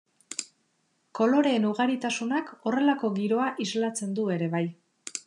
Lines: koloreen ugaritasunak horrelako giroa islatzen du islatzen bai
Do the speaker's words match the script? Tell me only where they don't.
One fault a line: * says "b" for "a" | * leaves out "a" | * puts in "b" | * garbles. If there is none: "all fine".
* says "ere" for "islatzen"